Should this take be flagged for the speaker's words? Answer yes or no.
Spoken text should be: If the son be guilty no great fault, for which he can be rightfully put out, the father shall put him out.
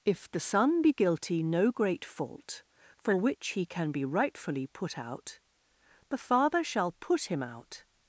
no